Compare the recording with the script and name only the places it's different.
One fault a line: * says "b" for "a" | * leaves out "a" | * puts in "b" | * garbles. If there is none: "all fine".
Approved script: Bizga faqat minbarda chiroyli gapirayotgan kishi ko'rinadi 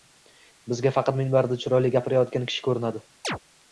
all fine